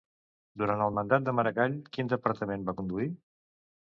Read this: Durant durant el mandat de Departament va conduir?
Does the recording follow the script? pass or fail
fail